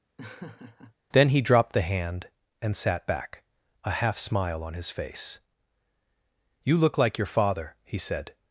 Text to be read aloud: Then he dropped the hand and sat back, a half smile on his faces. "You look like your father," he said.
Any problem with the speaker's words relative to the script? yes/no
yes